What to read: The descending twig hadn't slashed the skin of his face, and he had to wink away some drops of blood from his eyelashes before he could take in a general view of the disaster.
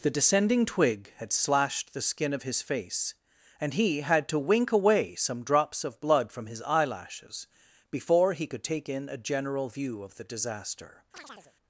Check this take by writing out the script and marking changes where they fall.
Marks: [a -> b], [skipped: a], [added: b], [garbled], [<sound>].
The descending twig [hadn't -> had] slashed the skin of his face, and he had to wink away some drops of blood from his eyelashes before he could take in a general view of the disaster. [chirp]